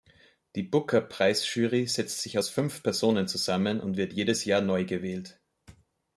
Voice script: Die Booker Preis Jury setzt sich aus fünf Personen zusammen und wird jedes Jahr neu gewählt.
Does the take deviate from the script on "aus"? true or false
false